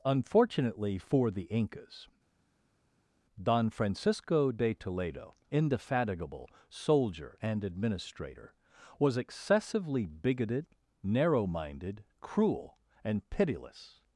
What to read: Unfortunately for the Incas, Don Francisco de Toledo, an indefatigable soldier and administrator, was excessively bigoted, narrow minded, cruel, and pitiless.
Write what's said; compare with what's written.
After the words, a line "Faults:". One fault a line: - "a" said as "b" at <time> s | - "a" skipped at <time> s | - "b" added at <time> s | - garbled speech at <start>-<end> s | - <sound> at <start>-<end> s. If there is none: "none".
Unfortunately for the Incas, Don Francisco de Toledo, indefatigable soldier and administrator, was excessively bigoted, narrow minded, cruel, and pitiless.
Faults:
- "an" skipped at 5.3 s